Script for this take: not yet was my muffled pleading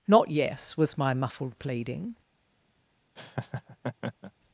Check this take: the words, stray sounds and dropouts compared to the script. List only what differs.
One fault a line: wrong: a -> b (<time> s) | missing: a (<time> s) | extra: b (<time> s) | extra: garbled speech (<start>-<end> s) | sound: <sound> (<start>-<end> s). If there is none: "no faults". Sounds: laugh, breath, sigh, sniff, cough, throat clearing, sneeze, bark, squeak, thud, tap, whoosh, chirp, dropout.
wrong: yet -> yes (0.3 s)
sound: laugh (3.2-4.3 s)